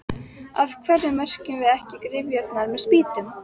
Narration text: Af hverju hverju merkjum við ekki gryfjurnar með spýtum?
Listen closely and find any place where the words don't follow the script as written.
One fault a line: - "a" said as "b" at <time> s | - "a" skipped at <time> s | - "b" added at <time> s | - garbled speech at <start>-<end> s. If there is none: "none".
- "hverju" skipped at 1.1 s